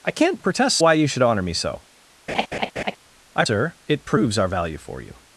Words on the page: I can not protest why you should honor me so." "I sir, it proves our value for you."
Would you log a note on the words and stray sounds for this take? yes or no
yes